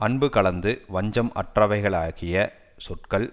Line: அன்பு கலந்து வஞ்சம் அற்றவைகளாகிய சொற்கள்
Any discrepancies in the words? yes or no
no